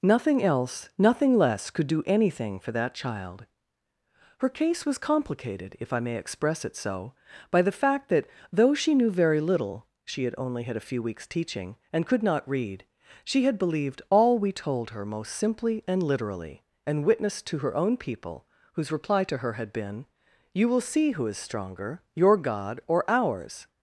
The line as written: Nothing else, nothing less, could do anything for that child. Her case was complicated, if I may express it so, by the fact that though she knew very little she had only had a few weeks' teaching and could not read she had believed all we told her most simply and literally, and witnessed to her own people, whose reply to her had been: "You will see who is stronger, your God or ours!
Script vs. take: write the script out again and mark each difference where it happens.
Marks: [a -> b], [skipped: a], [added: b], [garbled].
Nothing else, nothing less, could do anything for that child. Her case was complicated, if I may express it so, by the fact that though she knew very little she had only had a few weeks' teaching and could not read she had believed all we told her most simply and literally, and witnessed to her own people, whose reply to her had been: "You will see who is stronger, your God or ours!